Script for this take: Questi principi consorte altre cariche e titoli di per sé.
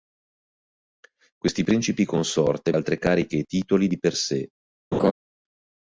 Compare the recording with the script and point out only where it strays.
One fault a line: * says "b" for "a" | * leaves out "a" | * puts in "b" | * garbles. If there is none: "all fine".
all fine